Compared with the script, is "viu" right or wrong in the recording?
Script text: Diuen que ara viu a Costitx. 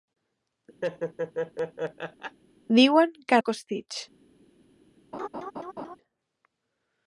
wrong